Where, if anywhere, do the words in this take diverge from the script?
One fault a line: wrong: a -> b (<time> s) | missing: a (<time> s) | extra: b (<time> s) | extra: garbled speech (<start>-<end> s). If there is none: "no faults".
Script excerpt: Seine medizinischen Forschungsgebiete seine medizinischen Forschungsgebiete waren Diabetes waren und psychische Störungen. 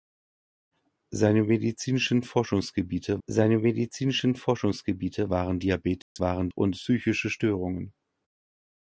no faults